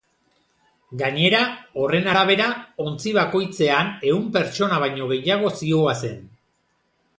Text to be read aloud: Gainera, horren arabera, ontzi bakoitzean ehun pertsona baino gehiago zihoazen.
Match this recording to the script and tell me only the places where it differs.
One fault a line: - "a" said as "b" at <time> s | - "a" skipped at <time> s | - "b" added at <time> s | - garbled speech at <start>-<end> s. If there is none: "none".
none